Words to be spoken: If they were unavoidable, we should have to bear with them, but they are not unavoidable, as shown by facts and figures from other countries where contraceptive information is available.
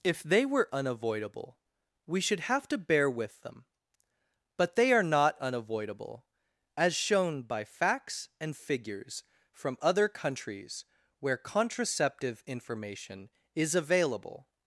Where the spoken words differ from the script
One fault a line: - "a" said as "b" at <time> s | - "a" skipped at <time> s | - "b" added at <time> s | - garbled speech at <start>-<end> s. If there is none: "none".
none